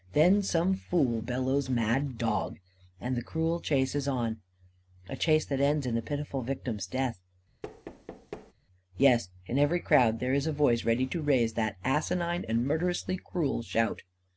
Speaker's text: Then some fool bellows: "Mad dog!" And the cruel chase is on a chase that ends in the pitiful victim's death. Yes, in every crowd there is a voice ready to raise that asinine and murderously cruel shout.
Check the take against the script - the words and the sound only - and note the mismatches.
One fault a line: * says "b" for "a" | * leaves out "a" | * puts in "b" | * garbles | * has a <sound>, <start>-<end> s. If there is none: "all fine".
* has a thud, 7.6-8.5 s